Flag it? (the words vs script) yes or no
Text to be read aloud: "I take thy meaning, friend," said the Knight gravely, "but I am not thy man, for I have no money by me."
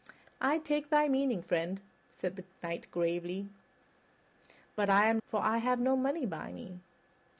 yes